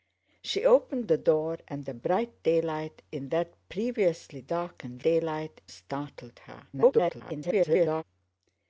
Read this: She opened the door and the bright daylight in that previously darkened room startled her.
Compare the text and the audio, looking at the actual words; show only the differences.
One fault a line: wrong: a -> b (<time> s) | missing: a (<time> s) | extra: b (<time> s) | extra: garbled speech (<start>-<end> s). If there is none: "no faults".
wrong: room -> daylight (5.0 s)
extra: garbled speech (6.7-8.0 s)